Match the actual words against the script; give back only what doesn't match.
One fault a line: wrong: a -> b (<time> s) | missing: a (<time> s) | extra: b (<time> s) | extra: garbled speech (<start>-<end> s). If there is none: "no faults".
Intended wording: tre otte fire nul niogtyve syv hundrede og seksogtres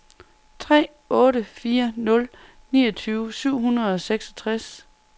no faults